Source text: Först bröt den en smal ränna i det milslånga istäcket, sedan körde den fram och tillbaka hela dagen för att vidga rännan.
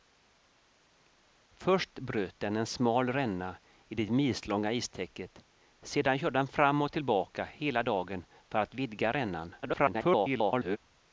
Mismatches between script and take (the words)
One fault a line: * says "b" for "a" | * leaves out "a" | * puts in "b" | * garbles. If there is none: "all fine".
* garbles